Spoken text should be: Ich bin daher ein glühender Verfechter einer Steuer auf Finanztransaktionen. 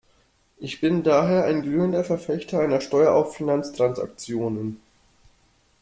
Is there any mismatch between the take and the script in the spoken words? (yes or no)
no